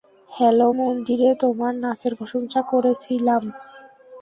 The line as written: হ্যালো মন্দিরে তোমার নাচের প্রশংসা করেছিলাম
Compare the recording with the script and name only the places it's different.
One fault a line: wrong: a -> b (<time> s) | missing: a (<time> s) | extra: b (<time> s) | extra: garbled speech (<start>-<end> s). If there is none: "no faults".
no faults